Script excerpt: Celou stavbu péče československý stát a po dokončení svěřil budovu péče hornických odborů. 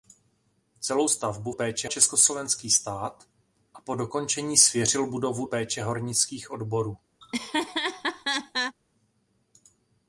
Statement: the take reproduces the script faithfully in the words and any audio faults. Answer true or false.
false